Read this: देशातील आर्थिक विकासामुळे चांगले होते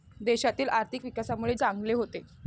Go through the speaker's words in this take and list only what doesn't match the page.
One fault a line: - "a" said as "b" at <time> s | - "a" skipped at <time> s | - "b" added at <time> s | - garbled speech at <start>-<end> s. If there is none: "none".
none